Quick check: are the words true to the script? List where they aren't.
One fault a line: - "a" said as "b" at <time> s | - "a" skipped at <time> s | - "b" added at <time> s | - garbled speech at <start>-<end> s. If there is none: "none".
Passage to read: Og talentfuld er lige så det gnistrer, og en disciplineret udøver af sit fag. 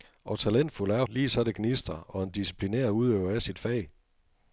none